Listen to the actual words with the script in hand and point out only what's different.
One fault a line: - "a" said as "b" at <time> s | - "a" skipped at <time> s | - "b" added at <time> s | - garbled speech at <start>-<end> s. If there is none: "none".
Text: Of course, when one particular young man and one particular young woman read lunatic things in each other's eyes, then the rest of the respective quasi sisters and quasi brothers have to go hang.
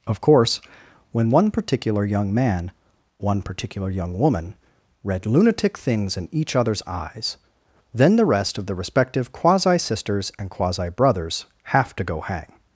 - "and" skipped at 2.7 s